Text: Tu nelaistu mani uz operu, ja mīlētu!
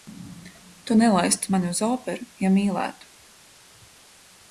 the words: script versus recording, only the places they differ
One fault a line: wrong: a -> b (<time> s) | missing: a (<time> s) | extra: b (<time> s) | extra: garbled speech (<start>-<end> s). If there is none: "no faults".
no faults